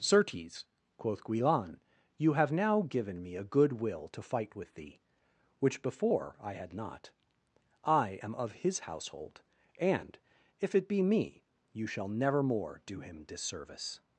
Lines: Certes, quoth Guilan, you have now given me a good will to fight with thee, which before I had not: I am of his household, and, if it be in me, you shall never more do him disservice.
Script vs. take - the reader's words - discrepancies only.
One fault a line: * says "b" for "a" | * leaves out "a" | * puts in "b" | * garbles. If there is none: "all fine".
* leaves out "in"